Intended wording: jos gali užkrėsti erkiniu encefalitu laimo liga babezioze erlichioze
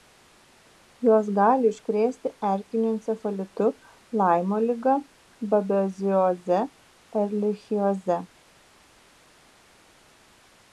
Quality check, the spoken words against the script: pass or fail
pass